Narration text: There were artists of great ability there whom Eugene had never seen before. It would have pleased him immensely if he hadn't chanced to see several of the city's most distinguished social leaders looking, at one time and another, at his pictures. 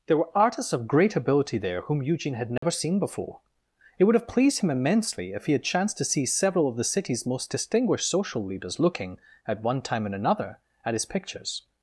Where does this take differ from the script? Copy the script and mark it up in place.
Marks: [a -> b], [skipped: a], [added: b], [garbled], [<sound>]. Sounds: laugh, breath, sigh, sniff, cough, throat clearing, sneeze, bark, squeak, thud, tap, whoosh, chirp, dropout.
There were artists of great ability there whom Eugene had never [dropout] seen before. It would have pleased him immensely if he [hadn't -> had] chanced to see several of the city's most distinguished social leaders looking, at one time and another, at his pictures.